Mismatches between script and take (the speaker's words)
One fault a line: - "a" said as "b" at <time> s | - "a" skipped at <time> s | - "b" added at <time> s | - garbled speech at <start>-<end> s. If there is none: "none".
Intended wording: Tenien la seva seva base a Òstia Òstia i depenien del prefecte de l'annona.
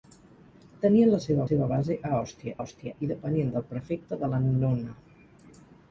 none